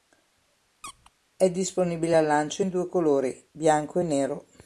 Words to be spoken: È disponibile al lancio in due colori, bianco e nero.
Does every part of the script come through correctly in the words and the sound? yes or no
no